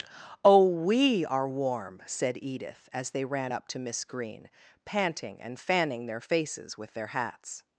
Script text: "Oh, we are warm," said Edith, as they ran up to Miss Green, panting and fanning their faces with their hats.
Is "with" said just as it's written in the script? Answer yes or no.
yes